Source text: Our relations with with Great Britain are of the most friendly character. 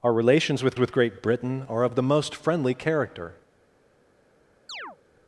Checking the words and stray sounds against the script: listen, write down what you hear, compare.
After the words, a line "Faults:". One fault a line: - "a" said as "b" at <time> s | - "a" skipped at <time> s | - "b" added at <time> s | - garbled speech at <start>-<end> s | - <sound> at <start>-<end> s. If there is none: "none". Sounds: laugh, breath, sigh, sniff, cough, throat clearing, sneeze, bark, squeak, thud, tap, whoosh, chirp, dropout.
Our relations with with Great Britain are of the most friendly character.
Faults:
- chirp at 4.7-5.0 s